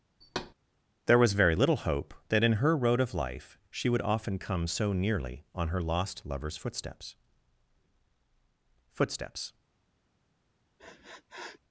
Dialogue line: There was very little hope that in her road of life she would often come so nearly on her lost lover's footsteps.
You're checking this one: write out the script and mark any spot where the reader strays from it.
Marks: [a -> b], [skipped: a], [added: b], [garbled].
There was very little hope that in her road of life she would often come so nearly on her lost lover's footsteps. [added: footsteps]